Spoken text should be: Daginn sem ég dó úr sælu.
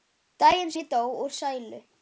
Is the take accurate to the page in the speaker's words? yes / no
no